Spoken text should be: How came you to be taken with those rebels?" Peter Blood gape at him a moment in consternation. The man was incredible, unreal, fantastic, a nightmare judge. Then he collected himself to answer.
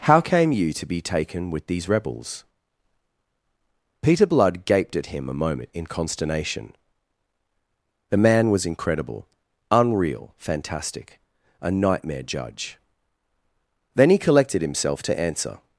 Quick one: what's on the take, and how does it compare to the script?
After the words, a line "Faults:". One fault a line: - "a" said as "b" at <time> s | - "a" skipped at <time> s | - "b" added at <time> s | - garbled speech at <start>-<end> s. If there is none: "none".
How came you to be taken with these rebels?" Peter Blood gaped at him a moment in consternation. The man was incredible, unreal, fantastic, a nightmare judge. Then he collected himself to answer.
Faults:
- "those" said as "these" at 1.7 s
- "gape" said as "gaped" at 4.7 s